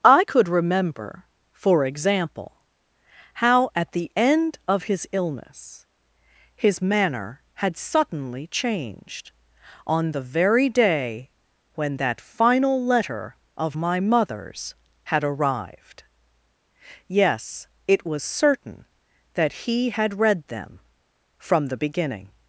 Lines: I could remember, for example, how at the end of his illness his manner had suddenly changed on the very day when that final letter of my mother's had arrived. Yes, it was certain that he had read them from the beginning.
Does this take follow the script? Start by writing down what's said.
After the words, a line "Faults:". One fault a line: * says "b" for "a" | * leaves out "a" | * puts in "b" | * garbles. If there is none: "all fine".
I could remember, for example, how at the end of his illness his manner had suddenly changed on the very day when that final letter of my mother's had arrived. Yes, it was certain that he had read them from the beginning.
Faults:
all fine